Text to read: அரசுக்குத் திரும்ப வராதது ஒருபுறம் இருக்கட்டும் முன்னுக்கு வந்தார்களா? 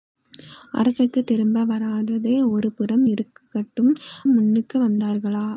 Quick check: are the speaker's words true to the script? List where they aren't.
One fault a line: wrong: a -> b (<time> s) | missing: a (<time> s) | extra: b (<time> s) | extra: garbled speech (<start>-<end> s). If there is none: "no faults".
no faults